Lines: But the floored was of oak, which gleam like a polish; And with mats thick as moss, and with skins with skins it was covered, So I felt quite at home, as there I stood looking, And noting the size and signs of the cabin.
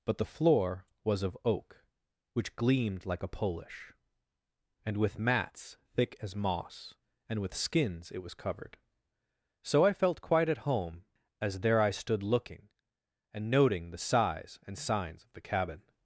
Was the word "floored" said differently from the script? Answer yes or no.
yes